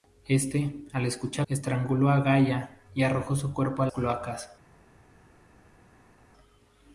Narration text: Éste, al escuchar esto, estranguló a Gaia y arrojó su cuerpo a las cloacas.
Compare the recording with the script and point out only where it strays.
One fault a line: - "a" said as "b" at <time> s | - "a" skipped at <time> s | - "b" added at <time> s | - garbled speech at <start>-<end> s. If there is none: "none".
- "esto" skipped at 1.5 s
- "las" skipped at 3.9 s